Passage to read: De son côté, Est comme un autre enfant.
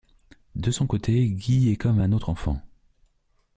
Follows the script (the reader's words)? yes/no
no